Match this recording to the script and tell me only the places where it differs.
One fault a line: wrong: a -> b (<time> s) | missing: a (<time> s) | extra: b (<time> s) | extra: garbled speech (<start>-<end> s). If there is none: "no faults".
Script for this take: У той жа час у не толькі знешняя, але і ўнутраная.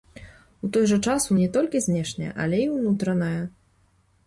no faults